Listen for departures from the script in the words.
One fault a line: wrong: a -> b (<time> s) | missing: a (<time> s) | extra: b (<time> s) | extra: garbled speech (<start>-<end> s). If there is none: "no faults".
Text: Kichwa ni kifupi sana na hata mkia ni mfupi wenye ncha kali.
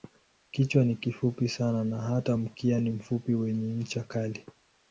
no faults